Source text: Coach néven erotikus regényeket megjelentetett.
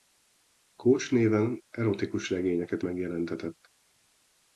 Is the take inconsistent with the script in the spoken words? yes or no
no